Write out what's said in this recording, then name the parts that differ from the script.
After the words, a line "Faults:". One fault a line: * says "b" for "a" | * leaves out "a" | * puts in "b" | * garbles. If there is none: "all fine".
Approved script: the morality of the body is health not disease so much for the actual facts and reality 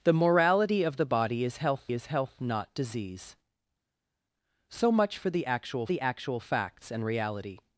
the morality of the body is health is health not disease so much for the actual the actual facts and reality
Faults:
* puts in "is health"
* puts in "the actual"